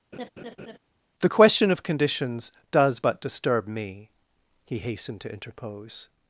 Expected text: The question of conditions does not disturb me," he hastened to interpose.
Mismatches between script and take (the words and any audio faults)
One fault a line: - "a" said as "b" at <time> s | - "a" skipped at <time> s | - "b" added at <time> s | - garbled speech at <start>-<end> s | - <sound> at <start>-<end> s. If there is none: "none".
- laugh at 0.1-0.8 s
- "not" said as "but" at 3.0 s